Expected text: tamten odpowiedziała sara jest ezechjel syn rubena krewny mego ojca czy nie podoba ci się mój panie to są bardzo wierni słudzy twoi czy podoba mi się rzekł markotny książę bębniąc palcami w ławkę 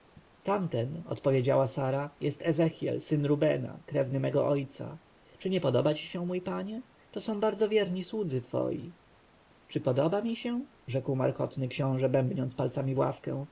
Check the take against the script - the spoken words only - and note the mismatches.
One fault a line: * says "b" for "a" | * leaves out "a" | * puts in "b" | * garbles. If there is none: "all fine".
all fine